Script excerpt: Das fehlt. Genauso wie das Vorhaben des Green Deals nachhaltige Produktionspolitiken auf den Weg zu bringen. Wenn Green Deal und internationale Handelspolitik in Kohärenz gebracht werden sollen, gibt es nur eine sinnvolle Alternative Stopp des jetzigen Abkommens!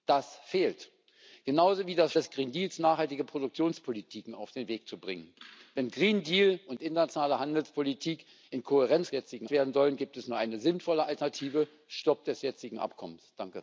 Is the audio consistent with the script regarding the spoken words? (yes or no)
no